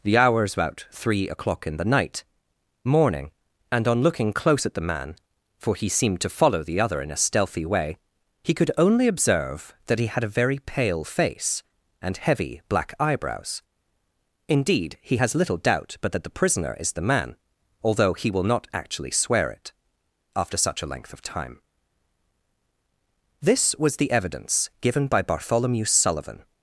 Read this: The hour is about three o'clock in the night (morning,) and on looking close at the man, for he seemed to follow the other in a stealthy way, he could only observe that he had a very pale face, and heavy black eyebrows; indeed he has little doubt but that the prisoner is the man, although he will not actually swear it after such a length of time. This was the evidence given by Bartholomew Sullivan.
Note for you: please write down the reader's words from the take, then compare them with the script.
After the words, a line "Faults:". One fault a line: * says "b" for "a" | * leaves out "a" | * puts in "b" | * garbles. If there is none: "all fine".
The hour is about three o'clock in the night (morning,) and on looking close at the man, for he seemed to follow the other in a stealthy way, he could only observe that he had a very pale face, and heavy black eyebrows; indeed he has little doubt but that the prisoner is the man, although he will not actually swear it after such a length of time. This was the evidence given by Bartholomew Sullivan.
Faults:
all fine